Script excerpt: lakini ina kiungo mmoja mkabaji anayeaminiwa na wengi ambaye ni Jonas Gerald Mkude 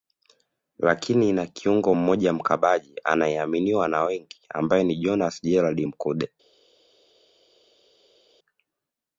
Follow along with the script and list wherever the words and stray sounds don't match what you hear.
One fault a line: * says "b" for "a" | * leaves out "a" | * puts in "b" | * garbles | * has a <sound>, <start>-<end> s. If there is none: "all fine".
all fine